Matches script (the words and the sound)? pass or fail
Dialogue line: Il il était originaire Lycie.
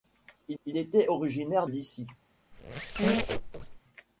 fail